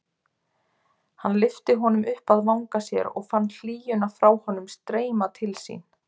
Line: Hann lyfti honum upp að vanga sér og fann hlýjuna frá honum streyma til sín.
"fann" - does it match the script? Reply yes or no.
yes